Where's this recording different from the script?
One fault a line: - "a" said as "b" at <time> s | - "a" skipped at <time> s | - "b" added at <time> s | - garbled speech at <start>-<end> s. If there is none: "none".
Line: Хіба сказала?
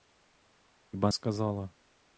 none